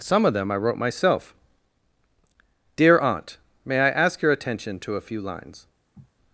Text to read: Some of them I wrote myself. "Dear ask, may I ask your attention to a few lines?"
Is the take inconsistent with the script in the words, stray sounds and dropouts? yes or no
yes